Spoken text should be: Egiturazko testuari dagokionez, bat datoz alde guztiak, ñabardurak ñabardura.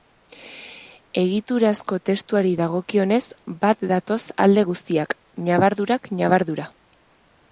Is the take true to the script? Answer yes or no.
yes